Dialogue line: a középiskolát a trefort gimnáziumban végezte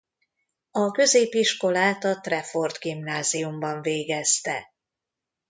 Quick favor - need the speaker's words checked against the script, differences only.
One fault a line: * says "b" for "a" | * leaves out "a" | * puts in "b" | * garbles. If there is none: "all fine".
all fine